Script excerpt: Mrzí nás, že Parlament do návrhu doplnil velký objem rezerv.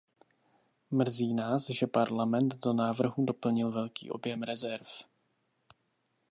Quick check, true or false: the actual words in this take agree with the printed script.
true